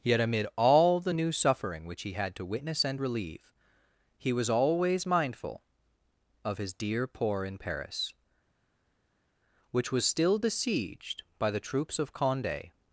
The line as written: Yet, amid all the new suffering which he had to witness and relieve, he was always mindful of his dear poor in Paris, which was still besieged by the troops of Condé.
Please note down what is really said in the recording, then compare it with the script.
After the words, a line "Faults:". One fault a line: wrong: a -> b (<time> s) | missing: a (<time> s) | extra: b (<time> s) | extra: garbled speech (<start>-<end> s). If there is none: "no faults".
Yet, amid all the new suffering which he had to witness and relieve, he was always mindful of his dear poor in Paris, which was still besieged by the troops of Condé.
Faults:
no faults